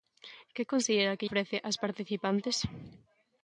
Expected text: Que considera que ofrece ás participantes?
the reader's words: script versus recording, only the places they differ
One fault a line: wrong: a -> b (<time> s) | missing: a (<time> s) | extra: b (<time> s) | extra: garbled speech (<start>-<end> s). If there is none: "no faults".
no faults